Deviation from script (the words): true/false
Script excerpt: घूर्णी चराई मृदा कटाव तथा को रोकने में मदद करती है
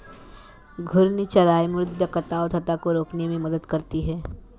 false